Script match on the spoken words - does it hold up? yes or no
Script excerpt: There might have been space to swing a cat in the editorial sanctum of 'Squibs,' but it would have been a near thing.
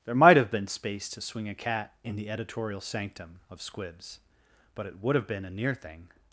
yes